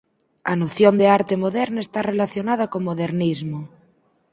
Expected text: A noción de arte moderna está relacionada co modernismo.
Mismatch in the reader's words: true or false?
false